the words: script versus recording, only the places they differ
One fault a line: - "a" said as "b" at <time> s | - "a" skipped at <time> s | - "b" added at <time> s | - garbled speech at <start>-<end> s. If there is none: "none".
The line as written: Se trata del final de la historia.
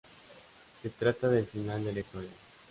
none